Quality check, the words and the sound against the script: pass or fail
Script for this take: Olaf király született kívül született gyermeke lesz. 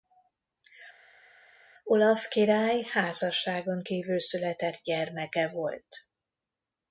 fail